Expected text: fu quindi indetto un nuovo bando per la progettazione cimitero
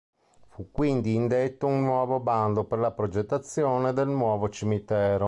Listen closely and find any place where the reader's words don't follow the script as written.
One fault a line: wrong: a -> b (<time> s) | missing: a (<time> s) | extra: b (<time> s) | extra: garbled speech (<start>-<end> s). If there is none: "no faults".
extra: del nuovo (3.9 s)